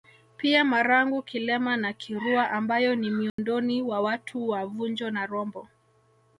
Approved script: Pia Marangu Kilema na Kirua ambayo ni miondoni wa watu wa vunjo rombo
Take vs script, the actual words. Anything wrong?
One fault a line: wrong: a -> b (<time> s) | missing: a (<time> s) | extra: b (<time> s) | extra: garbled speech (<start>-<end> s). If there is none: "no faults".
extra: na (5.1 s)